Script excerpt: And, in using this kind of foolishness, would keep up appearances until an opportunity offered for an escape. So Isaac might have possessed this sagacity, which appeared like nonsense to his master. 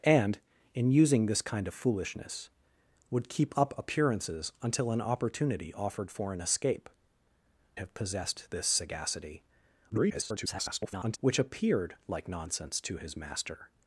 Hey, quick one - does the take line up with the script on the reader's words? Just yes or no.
no